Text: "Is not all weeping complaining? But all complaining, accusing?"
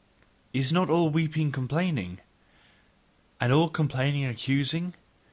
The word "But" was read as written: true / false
false